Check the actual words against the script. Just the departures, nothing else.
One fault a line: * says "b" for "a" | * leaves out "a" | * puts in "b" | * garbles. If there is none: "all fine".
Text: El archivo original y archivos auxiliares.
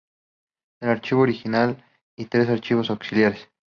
* puts in "tres"